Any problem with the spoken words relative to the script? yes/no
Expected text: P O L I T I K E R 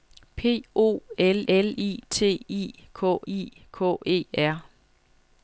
yes